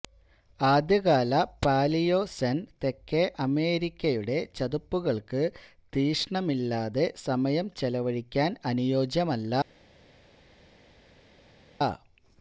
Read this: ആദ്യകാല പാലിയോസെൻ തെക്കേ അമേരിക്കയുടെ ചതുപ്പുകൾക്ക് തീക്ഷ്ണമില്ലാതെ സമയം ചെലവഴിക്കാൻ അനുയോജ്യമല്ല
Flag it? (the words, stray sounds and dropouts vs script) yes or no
no